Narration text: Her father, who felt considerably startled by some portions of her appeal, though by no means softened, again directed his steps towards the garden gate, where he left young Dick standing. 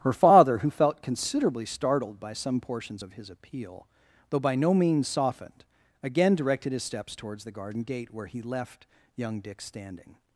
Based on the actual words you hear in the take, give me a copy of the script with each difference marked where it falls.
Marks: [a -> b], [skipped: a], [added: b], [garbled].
Her father, who felt considerably startled by some portions of [her -> his] appeal, though by no means softened, again directed his steps towards the garden gate, where he left young Dick standing.